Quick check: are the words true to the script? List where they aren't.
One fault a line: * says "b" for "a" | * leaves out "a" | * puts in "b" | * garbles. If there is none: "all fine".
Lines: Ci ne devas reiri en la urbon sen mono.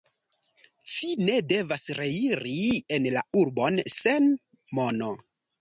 all fine